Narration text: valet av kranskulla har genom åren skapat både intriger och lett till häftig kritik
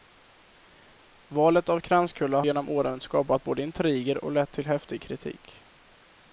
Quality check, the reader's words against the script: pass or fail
fail